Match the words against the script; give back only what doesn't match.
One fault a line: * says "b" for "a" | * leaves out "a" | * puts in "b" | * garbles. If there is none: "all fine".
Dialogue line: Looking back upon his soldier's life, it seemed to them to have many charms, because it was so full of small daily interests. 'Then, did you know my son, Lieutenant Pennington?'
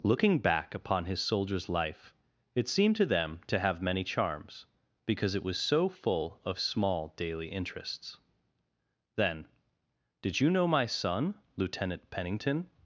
all fine